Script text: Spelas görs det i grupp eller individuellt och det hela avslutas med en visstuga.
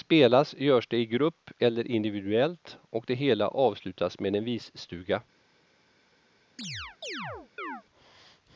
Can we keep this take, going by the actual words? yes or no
yes